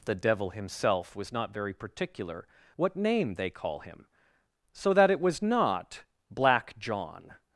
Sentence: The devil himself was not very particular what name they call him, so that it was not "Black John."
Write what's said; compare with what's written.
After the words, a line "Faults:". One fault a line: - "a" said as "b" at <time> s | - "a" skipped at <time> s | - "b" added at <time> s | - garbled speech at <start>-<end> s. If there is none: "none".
The devil himself was not very particular what name they call him, so that it was not "Black John."
Faults:
none